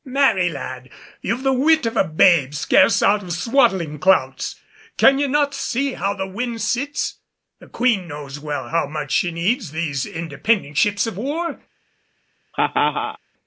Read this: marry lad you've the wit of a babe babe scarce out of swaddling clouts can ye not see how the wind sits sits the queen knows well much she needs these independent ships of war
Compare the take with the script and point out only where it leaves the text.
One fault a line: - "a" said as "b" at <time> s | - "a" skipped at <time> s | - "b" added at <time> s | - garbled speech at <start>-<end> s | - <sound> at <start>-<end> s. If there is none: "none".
- "babe" skipped at 2.5 s
- "sits" skipped at 7.2 s
- "how" added at 8.7 s
- laugh at 12.5-13.2 s